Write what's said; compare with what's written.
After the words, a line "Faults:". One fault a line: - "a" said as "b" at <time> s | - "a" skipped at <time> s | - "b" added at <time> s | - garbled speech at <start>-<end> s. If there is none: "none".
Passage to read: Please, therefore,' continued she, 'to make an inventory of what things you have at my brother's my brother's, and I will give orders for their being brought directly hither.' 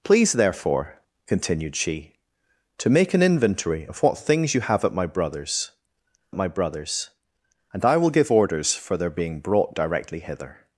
Please, therefore,' continued she, 'to make an inventory of what things you have at my brother's my brother's, and I will give orders for their being brought directly hither.'
Faults:
none